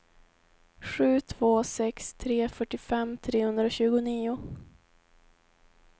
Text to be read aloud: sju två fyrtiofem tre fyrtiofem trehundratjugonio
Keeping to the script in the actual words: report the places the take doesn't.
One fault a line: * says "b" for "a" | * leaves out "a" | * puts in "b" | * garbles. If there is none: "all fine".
* says "sex" for "fyrtiofem"